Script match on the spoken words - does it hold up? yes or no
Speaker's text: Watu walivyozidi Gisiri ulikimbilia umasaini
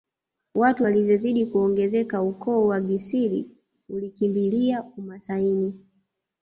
no